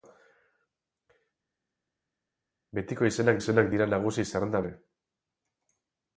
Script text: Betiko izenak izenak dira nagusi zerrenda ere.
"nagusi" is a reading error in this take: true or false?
false